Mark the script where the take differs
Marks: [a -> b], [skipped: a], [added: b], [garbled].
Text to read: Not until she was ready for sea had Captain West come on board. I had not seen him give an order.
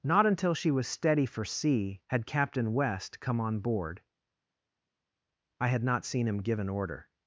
Not until she was [ready -> steady] for sea had Captain West come on board. I had not seen him give an order.